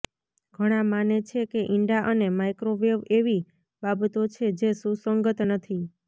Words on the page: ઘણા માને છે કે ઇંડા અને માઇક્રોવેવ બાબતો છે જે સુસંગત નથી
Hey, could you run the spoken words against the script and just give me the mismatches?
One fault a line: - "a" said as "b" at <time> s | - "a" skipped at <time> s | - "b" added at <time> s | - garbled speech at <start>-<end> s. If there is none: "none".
- "એવી" added at 3.2 s